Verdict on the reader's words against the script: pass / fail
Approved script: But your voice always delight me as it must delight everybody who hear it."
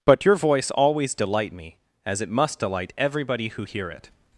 pass